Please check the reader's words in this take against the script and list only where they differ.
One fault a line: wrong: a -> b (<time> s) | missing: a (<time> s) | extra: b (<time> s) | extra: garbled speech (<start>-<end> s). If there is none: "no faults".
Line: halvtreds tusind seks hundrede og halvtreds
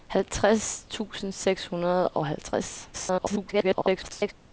extra: garbled speech (2.9-4.3 s)